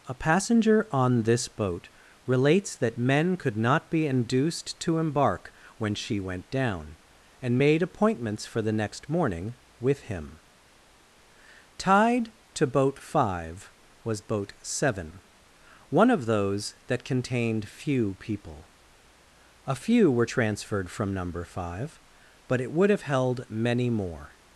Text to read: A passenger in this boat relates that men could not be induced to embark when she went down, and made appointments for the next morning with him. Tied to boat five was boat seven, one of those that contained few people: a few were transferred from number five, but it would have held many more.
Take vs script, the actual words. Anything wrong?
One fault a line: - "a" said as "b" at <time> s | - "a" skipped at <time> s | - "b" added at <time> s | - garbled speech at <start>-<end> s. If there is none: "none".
- "in" said as "on" at 0.9 s